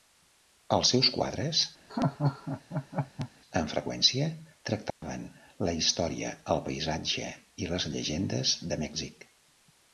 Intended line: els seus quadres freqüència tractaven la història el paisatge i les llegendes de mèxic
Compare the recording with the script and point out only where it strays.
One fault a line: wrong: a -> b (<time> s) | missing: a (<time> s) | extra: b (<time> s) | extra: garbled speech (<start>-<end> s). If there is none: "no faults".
extra: amb (3.6 s)